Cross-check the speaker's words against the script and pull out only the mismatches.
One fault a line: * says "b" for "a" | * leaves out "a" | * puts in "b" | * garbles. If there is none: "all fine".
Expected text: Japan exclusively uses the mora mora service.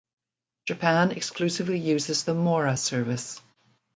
* leaves out "mora"